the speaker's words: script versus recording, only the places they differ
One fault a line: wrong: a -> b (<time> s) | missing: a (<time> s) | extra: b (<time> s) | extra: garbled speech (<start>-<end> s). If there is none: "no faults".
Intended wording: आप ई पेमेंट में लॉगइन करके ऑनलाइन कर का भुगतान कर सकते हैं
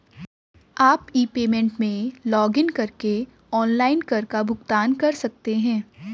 no faults